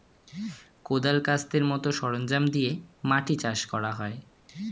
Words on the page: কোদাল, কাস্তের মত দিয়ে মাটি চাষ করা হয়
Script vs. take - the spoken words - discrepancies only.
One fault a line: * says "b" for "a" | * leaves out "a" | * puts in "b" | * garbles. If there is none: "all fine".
* puts in "সরঞ্জাম"